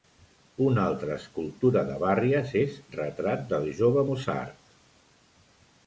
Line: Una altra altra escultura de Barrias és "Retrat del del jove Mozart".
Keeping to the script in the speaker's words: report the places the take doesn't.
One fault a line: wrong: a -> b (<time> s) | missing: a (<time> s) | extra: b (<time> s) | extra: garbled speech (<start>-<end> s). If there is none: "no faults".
missing: altra (1.2 s)
missing: del (3.7 s)